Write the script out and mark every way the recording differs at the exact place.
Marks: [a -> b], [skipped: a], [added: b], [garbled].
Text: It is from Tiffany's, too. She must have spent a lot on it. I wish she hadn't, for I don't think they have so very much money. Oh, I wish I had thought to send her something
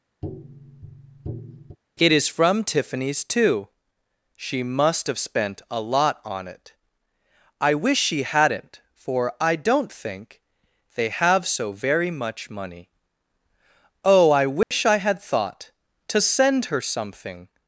It is from Tiffany's, too. She must have spent a lot on it. I wish she hadn't, for I don't think they have so very much money. Oh, I wish I had thought to send her something